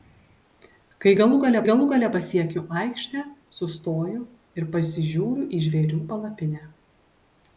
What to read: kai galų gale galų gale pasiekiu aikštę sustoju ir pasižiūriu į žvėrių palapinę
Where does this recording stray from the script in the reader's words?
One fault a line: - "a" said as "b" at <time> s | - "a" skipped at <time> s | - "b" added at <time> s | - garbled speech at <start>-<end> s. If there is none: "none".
none